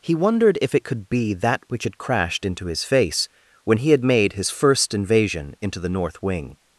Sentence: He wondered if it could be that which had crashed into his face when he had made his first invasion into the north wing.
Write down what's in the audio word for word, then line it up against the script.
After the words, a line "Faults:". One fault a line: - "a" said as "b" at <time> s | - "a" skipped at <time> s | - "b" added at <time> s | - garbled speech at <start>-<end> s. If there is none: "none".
He wondered if it could be that which had crashed into his face when he had made his first invasion into the north wing.
Faults:
none